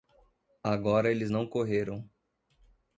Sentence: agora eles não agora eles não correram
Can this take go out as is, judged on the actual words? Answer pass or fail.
fail